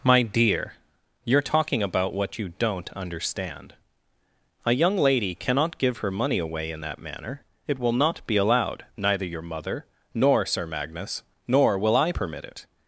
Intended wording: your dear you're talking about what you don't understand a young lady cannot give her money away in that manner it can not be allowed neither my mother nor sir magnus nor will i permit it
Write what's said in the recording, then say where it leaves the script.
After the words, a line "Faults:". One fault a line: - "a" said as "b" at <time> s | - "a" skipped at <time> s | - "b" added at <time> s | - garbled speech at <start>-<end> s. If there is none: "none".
my dear you're talking about what you don't understand a young lady cannot give her money away in that manner it will not be allowed neither your mother nor sir magnus nor will i permit it
Faults:
- "your" said as "my" at 0.0 s
- "can" said as "will" at 7.8 s
- "my" said as "your" at 9.3 s